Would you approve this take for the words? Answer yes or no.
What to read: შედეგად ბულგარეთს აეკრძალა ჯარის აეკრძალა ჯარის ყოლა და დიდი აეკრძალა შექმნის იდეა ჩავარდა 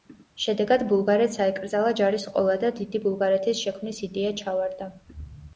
no